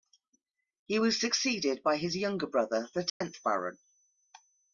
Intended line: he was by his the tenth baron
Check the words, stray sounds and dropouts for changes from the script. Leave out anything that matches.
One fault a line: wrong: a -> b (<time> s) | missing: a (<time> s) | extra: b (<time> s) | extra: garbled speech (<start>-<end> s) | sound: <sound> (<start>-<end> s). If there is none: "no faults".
extra: succeeded (1.2 s)
extra: younger brother (2.1 s)
sound: dropout (3.1-3.2 s)